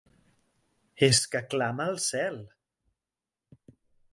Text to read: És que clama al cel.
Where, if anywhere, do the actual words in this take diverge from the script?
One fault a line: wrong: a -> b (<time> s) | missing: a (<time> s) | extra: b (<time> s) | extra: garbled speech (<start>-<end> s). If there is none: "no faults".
no faults